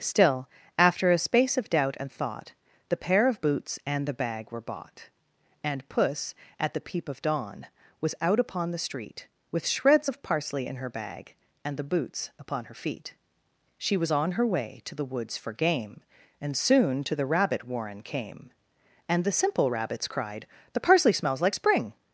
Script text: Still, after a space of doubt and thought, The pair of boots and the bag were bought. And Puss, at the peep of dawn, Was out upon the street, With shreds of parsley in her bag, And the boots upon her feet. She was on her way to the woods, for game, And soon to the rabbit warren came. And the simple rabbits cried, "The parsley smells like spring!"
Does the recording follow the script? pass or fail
pass